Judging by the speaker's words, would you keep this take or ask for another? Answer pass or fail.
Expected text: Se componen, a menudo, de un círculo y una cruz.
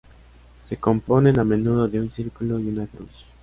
pass